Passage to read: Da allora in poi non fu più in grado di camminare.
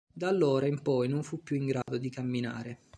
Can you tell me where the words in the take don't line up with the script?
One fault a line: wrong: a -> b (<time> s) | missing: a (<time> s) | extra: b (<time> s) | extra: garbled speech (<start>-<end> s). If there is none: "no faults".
no faults